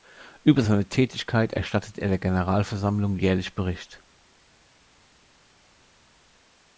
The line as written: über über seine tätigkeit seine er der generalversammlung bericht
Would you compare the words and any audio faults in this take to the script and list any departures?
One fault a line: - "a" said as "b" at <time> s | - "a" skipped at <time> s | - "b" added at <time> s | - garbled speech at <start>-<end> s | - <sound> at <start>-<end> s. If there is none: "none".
- "über" skipped at 0.6 s
- "seine" said as "erstattet" at 1.5 s
- "jährlich" added at 3.2 s